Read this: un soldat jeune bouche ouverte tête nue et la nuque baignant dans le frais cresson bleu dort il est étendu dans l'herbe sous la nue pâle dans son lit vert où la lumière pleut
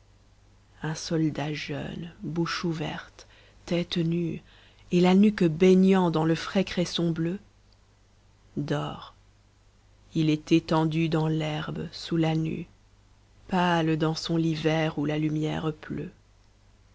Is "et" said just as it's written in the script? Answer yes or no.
yes